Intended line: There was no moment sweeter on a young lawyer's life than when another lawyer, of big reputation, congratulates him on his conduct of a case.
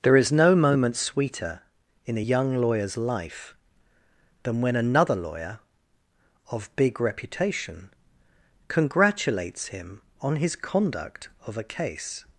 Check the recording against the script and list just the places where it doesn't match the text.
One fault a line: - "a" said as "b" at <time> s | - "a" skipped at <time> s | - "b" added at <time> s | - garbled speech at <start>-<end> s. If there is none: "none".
- "was" said as "is" at 0.2 s
- "on" said as "in" at 2.0 s